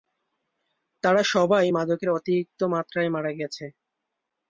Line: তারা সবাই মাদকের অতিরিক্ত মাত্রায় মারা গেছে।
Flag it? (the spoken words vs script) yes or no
no